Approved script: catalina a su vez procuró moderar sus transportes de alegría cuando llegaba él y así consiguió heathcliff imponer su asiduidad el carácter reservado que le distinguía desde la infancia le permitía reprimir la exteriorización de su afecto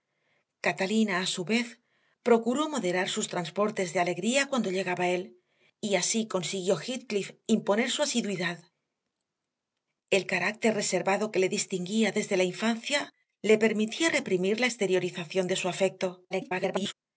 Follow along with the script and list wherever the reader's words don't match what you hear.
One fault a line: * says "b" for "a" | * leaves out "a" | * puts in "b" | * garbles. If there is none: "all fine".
* garbles